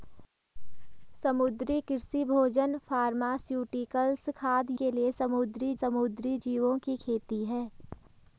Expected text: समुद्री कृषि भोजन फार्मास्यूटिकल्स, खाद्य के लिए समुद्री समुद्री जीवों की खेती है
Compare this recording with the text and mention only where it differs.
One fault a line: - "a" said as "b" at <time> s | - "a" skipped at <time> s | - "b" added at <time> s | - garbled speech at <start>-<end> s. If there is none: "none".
none